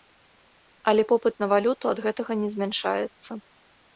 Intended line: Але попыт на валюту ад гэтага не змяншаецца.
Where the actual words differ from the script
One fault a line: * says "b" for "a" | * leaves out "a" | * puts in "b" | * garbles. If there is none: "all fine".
all fine